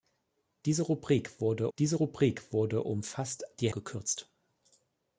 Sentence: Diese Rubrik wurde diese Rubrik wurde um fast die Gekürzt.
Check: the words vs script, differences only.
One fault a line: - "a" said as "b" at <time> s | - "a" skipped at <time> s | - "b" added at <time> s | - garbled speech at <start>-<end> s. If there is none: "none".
none